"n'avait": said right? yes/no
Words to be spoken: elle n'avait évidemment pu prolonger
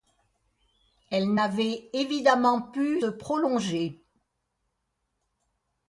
yes